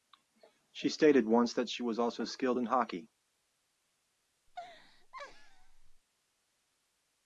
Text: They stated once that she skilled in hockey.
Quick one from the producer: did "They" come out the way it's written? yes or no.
no